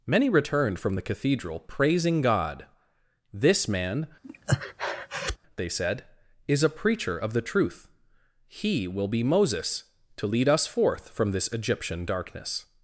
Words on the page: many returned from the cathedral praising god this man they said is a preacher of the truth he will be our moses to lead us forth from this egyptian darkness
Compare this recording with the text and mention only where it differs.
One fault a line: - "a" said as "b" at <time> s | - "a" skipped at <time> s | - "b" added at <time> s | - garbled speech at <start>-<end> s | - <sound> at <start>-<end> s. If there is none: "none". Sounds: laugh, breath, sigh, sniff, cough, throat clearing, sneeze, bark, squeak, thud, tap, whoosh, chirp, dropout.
- breath at 4.2-5.4 s
- "our" skipped at 9.2 s